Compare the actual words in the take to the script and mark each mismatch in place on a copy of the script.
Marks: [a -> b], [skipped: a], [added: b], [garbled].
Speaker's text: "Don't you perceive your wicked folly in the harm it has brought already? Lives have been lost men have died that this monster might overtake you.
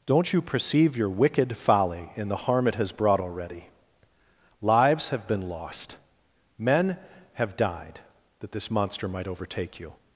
"Don't you perceive your wicked folly in the harm it has brought already? Lives have been lost men have died that this monster might overtake you.